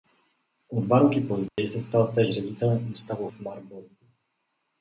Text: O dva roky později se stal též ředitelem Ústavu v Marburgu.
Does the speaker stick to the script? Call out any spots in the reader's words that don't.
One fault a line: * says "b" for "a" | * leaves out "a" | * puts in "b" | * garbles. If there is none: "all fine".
all fine